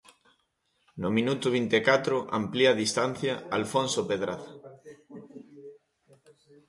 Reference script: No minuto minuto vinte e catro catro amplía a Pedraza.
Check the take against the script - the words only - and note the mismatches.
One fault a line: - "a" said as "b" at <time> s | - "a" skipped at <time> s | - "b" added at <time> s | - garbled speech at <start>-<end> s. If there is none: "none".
- "minuto" skipped at 1.4 s
- "catro" skipped at 2.2 s
- "distancia Alfonso" added at 2.8 s